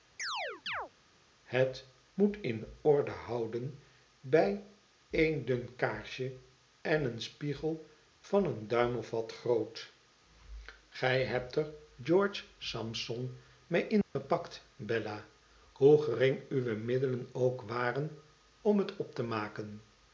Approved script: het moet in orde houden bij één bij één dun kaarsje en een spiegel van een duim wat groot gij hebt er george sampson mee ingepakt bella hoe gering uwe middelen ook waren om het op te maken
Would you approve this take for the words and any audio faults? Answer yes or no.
no